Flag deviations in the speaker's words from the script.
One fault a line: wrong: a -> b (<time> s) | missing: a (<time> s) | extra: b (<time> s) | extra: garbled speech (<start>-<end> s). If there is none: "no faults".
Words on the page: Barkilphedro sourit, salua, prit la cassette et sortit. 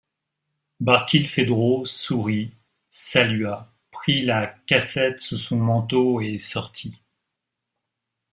extra: sous son manteau (5.2 s)